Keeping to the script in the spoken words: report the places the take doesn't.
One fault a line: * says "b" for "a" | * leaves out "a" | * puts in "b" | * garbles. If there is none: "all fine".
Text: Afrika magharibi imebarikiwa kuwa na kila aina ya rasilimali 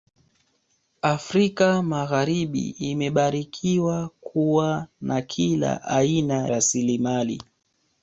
* leaves out "ya"